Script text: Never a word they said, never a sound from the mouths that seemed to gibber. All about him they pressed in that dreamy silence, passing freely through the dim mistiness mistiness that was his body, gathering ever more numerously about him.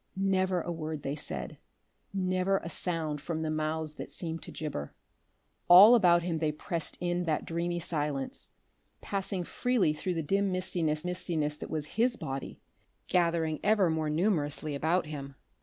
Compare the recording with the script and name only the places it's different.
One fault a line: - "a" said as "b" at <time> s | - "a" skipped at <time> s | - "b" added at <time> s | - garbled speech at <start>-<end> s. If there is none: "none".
none